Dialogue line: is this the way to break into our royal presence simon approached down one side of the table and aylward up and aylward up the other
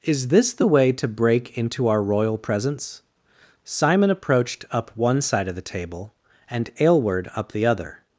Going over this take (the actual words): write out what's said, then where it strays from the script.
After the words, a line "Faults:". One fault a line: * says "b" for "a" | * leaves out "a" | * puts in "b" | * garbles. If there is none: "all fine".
is this the way to break into our royal presence simon approached up one side of the table and aylward up the other
Faults:
* says "up" for "down"
* leaves out "and aylward up"